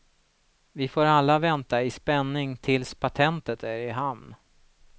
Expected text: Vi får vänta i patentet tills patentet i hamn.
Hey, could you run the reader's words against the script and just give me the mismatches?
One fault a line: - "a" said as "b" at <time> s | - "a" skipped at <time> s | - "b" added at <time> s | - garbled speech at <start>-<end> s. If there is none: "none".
- "alla" added at 1.1 s
- "patentet" said as "spänning" at 1.9 s
- "är" added at 3.6 s